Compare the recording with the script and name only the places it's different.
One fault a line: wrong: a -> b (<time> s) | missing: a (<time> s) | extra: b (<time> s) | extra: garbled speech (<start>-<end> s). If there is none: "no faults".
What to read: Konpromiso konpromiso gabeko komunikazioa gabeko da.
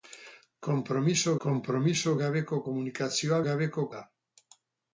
no faults